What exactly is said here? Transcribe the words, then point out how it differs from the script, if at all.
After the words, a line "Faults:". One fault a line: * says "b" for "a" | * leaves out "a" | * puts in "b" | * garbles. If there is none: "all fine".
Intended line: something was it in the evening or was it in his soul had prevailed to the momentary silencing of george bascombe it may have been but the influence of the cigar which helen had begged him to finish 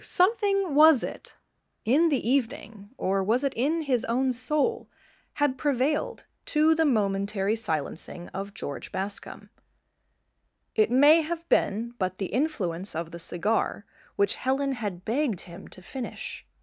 something was it in the evening or was it in his own soul had prevailed to the momentary silencing of george bascombe it may have been but the influence of the cigar which helen had begged him to finish
Faults:
* puts in "own"